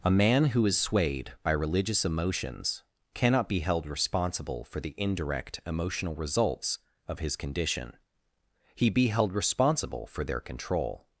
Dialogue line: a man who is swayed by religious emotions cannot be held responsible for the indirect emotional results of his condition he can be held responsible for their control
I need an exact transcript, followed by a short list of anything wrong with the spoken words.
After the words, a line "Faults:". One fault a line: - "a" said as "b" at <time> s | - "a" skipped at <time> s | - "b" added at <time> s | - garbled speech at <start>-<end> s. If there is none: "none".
a man who is swayed by religious emotions cannot be held responsible for the indirect emotional results of his condition he be held responsible for their control
Faults:
- "can" skipped at 8.9 s